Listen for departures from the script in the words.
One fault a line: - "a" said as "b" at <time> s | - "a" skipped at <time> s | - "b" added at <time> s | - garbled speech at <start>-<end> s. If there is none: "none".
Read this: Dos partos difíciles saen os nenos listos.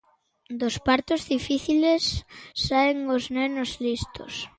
none